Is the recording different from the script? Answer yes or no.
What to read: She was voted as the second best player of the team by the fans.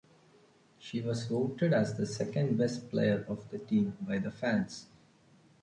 no